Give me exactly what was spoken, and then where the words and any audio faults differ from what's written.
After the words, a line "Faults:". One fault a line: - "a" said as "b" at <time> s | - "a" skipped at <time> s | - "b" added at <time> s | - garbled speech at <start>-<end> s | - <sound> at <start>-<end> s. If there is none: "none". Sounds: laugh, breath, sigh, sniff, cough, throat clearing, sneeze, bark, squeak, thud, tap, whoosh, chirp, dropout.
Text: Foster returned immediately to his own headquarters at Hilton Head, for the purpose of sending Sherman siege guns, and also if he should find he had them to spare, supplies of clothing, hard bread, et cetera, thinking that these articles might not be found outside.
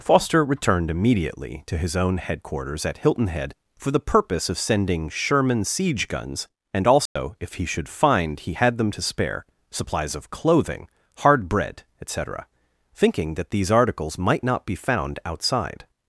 Foster returned immediately to his own headquarters at Hilton Head, for the purpose of sending Sherman siege guns, and also if he should find he had them to spare, supplies of clothing, hard bread, et cetera, thinking that these articles might not be found outside.
Faults:
- dropout at 7.1-7.2 s